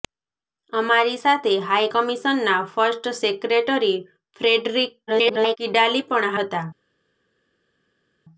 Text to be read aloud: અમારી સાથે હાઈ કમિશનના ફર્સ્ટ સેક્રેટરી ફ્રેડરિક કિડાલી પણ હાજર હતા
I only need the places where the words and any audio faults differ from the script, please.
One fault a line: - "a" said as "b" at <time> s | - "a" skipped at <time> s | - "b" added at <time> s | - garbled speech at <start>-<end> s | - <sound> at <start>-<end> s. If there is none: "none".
- garbled speech at 5.1-5.6 s
- "હાજર" skipped at 6.4 s